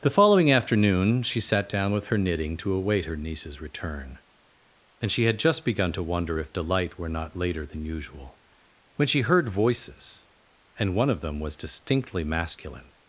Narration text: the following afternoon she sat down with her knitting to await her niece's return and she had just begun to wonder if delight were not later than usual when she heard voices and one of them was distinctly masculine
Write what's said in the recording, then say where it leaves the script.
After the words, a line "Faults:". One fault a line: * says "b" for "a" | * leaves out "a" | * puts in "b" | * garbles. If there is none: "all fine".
the following afternoon she sat down with her knitting to await her niece's return and she had just begun to wonder if delight were not later than usual when she heard voices and one of them was distinctly masculine
Faults:
all fine